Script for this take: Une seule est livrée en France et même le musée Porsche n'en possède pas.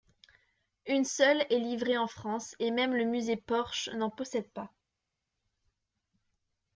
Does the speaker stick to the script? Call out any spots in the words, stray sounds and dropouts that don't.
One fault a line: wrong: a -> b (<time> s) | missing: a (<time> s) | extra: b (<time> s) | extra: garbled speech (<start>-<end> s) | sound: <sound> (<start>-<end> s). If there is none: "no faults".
no faults